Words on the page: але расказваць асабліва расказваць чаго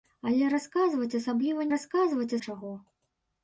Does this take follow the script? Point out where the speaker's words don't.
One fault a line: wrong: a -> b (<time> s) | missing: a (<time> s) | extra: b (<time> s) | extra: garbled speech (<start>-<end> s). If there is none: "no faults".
no faults